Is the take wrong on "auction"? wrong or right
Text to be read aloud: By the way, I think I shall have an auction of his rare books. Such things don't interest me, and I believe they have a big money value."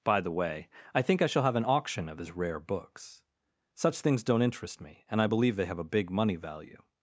right